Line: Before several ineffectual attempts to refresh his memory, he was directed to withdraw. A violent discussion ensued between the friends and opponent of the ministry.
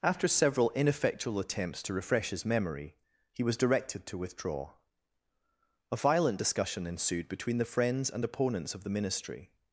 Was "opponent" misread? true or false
true